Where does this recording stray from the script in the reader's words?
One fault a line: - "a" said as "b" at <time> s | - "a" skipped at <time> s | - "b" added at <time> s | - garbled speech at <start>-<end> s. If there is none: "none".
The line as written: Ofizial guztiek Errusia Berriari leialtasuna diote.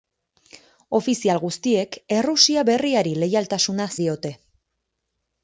none